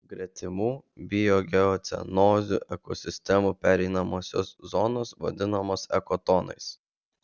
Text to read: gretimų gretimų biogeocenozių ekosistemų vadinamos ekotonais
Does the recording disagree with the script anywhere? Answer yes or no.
yes